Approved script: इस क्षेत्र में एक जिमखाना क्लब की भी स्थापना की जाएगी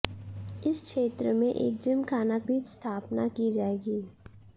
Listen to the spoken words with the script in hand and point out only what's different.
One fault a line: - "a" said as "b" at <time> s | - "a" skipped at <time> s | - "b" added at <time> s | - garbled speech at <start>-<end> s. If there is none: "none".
- "क्लब की" skipped at 2.4 s